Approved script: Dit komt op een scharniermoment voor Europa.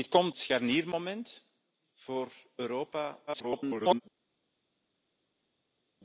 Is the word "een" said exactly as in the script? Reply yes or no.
no